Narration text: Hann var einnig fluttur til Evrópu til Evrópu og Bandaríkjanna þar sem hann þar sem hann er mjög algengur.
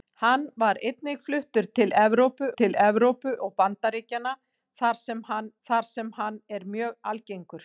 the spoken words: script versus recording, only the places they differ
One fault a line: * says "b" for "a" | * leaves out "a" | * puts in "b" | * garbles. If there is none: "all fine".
all fine